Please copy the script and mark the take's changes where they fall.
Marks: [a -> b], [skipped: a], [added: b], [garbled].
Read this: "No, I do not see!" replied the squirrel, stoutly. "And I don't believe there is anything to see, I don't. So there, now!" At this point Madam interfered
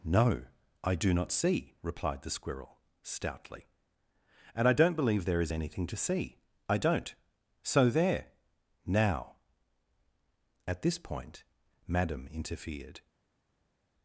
"No, I do not see!" replied the squirrel, stoutly. "And I don't believe there is anything to see, I don't. So there, now!" At this point Madam interfered